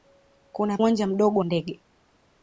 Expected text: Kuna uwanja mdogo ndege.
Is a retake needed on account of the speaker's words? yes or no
no